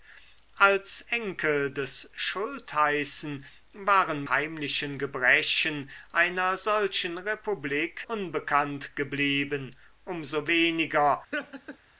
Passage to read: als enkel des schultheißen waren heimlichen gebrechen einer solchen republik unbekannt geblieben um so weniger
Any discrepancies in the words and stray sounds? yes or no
yes